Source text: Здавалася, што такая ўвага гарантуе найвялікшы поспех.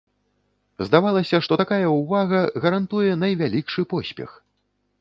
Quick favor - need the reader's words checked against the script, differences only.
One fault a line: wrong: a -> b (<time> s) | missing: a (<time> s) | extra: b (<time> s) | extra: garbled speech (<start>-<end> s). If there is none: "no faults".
no faults